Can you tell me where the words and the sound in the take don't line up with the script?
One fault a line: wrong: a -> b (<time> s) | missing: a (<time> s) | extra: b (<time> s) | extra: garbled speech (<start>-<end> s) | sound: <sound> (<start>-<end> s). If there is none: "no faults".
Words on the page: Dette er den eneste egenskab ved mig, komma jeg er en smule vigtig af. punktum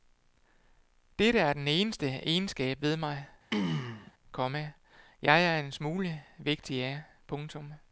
sound: throat clearing (3.5-4.1 s)